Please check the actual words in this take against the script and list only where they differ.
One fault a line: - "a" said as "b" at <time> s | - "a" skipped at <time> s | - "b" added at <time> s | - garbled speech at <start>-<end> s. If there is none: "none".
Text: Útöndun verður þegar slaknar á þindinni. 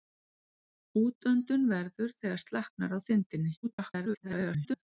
- garbled speech at 3.6-4.8 s